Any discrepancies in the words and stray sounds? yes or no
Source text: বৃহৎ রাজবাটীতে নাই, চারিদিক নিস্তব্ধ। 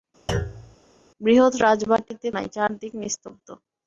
yes